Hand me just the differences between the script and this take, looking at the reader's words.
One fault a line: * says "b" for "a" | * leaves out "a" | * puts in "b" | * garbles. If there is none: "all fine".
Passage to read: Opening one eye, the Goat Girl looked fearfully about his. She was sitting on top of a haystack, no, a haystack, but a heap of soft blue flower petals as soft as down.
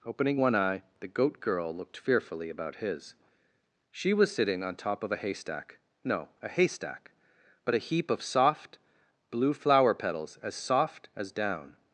all fine